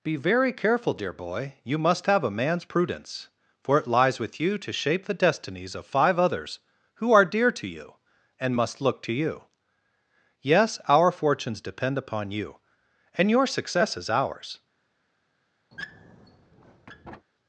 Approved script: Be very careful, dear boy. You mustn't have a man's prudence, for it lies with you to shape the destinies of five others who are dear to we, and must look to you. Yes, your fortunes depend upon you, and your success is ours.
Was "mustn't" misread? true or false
true